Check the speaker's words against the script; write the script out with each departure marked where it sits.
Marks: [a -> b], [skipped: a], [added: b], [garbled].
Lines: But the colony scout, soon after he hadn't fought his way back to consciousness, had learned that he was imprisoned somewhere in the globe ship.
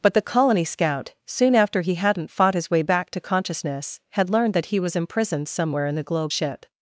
But the colony scout, soon after he hadn't fought his way back to consciousness, had learned that he was imprisoned somewhere in the globe ship.